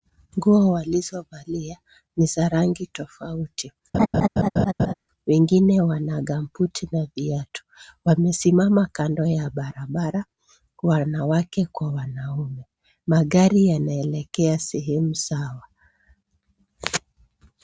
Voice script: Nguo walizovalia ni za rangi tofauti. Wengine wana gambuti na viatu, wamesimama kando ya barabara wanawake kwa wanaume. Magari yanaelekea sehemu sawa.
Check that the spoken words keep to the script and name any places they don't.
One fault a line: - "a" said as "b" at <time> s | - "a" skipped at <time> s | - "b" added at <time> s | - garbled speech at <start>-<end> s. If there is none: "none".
none